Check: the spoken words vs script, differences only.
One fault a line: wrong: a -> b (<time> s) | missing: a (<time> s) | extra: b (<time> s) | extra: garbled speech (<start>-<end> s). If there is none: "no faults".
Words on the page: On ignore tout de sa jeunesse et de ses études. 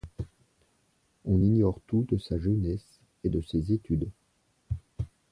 no faults